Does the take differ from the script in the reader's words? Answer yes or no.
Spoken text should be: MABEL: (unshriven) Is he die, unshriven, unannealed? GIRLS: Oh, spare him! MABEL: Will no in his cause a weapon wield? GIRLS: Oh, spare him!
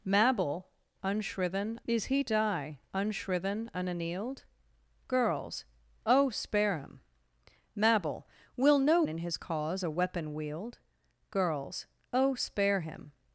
no